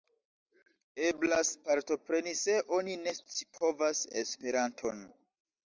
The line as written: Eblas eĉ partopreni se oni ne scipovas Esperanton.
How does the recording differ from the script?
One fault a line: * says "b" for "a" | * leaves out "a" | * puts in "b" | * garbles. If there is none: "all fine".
* leaves out "eĉ"